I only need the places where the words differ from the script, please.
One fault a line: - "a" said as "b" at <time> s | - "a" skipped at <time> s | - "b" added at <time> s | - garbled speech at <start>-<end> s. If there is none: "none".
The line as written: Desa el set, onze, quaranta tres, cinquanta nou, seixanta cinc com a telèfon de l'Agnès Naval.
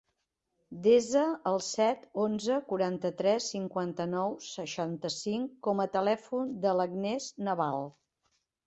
none